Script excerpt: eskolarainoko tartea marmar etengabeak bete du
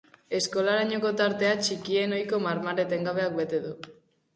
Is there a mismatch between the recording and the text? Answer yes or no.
yes